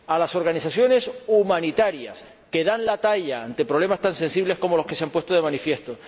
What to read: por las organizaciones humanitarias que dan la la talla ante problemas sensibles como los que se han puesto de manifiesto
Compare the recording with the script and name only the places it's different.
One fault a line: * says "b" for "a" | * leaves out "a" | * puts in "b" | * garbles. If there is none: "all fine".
* says "a" for "por"
* leaves out "la"
* puts in "tan"